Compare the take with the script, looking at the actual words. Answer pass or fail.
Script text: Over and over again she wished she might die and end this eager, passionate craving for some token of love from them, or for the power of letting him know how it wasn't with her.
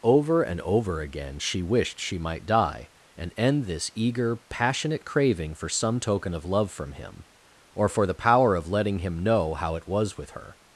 fail